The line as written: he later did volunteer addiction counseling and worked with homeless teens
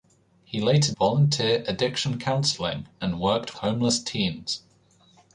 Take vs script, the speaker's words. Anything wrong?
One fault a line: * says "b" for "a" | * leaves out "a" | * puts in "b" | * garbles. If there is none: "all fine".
* leaves out "did"
* leaves out "with"